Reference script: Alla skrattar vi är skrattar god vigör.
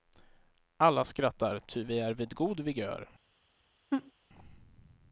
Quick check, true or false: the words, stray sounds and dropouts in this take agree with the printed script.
false